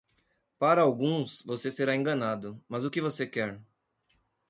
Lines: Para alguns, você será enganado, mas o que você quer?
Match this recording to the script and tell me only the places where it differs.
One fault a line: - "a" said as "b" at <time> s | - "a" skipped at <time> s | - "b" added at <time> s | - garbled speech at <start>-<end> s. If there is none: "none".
none